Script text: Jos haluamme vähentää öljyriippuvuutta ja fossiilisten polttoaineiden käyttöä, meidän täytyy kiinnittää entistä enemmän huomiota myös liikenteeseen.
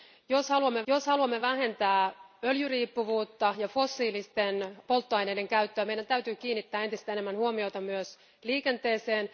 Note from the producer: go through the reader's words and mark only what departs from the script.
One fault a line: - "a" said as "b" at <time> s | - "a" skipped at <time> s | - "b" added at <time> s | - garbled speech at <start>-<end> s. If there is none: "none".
- "jos haluamme" added at 0.9 s